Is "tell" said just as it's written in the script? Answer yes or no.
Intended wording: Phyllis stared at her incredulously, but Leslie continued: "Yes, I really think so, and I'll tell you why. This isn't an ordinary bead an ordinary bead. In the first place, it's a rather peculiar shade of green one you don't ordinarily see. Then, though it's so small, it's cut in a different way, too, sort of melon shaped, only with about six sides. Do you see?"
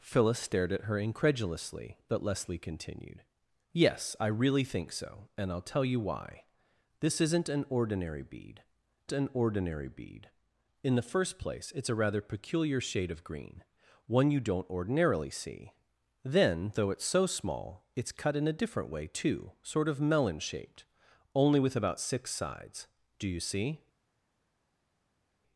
yes